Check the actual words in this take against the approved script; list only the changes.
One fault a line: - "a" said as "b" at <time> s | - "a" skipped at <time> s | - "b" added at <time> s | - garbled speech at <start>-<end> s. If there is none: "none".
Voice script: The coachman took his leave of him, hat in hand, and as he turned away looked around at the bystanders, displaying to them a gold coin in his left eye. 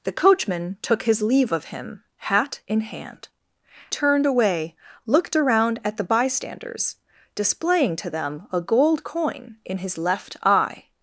- "and as he" skipped at 3.3 s